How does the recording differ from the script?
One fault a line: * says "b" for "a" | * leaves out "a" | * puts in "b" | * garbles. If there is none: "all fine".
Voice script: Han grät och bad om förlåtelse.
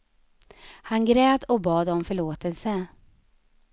all fine